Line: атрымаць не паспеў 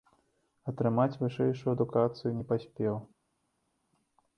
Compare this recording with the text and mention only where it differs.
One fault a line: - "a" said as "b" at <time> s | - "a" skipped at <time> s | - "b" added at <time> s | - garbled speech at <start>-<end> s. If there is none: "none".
- "вышэйшую адукацыю" added at 1.2 s